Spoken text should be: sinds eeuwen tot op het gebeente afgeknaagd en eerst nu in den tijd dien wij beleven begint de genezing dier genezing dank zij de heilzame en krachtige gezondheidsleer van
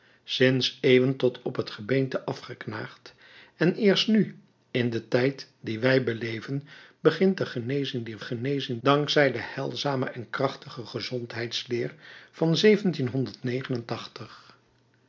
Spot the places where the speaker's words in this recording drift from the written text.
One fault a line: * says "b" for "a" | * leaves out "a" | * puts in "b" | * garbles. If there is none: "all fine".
all fine